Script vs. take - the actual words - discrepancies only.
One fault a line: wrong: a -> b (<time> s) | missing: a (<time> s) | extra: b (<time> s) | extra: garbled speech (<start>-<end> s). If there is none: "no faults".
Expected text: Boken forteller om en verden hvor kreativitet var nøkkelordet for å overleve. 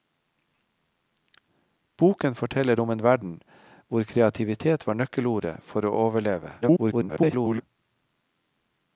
extra: garbled speech (6.6-7.6 s)